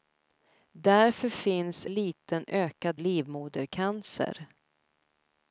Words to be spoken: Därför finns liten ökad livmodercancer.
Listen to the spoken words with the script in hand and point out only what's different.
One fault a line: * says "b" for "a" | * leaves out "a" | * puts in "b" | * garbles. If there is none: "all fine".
all fine